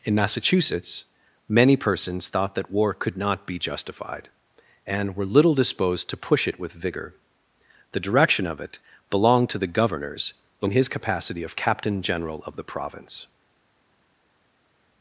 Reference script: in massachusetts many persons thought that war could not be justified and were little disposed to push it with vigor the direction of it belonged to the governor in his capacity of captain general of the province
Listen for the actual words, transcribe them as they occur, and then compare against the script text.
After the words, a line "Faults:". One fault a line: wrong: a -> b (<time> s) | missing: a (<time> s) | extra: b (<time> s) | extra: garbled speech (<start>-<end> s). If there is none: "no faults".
in massachusetts many persons thought that war could not be justified and were little disposed to push it with vigor the direction of it belonged to the governors in his capacity of captain general of the province
Faults:
wrong: governor -> governors (9.7 s)